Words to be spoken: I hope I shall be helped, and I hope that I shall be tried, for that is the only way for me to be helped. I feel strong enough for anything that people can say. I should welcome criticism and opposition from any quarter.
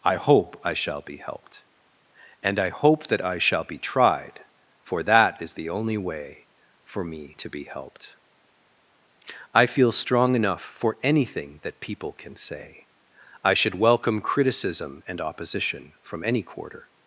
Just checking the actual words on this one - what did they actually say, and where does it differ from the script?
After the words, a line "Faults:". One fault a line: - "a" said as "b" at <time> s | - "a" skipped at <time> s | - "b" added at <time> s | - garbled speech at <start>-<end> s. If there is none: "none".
I hope I shall be helped, and I hope that I shall be tried, for that is the only way for me to be helped. I feel strong enough for anything that people can say. I should welcome criticism and opposition from any quarter.
Faults:
none